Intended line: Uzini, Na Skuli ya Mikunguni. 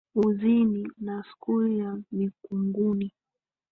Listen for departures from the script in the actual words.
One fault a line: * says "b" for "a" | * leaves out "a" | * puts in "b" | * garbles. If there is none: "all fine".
all fine